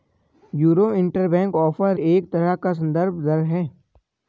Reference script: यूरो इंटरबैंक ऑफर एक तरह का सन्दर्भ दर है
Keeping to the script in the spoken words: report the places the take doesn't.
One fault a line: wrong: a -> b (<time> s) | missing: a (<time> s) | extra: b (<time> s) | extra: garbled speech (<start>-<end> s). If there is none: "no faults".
no faults